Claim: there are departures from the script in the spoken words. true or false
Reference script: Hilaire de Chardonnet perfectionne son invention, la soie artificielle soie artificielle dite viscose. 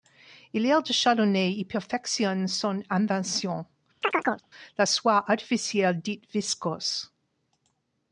true